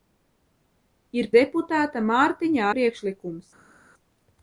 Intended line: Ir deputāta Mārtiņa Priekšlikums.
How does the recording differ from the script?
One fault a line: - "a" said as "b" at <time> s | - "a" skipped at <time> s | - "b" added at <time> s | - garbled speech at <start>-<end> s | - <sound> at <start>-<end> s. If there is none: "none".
none